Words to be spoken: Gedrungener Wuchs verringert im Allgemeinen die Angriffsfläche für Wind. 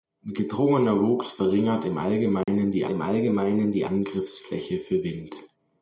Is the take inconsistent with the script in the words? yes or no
yes